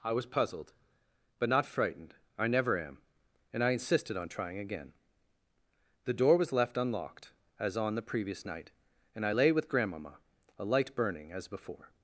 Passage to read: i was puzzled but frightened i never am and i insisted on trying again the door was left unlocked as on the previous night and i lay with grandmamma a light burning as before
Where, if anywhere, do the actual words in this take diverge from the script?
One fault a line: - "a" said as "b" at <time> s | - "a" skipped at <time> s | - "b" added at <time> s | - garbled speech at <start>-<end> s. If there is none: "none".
- "not" added at 1.5 s